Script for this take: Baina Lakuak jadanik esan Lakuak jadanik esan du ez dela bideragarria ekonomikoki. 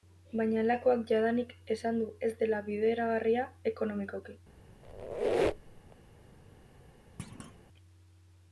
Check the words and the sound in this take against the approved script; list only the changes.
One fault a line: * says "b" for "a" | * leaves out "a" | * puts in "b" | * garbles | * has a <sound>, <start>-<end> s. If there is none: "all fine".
* leaves out "Lakuak jadanik esan"
* has a squeak, 4.8-6.0 s
* has a thud, 7.2-7.6 s